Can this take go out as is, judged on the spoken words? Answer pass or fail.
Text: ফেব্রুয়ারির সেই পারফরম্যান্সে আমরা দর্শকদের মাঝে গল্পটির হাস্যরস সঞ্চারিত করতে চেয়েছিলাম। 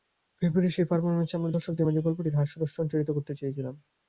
pass